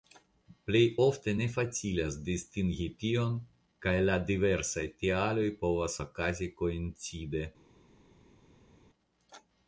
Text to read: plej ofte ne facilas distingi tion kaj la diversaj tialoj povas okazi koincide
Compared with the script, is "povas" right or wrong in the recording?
right